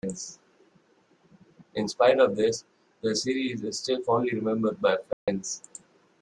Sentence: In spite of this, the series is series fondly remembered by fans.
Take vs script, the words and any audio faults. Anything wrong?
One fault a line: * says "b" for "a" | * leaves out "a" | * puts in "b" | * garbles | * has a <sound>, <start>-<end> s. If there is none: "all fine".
* says "still" for "series"
* has a dropout, 5.1-5.3 s